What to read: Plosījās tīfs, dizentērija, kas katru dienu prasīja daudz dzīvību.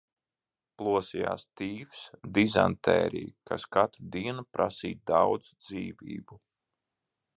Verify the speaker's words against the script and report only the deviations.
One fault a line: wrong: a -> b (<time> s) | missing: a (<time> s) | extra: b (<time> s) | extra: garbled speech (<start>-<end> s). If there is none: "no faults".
no faults